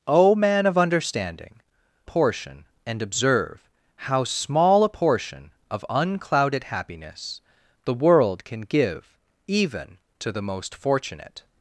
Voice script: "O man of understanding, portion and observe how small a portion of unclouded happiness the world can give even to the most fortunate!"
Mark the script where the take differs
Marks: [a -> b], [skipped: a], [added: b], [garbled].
"O man of understanding, portion and observe how small a portion of unclouded happiness the world can give even to the most fortunate!"